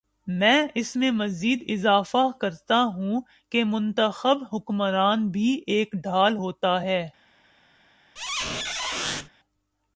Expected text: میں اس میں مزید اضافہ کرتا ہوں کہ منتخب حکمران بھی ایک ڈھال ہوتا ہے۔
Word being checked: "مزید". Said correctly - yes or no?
yes